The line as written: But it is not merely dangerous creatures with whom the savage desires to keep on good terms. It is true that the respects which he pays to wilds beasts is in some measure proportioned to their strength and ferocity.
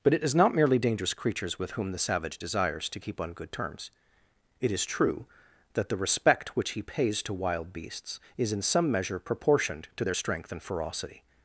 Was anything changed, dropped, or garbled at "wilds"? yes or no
yes